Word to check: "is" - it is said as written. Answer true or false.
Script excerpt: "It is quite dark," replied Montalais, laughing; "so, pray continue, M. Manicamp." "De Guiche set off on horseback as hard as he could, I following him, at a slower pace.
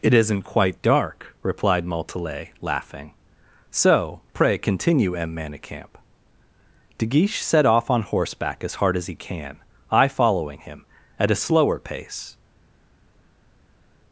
false